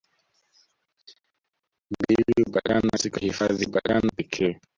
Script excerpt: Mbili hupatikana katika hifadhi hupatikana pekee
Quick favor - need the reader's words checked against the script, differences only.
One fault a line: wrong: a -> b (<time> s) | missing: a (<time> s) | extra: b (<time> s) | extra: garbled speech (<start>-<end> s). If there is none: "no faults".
no faults